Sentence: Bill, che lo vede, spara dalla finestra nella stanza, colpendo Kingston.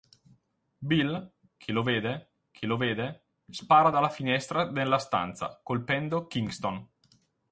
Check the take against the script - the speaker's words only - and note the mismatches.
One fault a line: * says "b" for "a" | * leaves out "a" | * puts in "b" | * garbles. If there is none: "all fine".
* puts in "che lo vede"